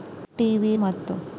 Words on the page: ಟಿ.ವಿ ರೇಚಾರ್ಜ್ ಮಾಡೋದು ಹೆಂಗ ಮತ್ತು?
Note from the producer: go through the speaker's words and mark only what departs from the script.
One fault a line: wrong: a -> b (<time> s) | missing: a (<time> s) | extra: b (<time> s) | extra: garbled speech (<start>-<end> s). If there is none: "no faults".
missing: ರೇಚಾರ್ಜ್ ಮಾಡೋದು ಹೆಂಗ (0.8 s)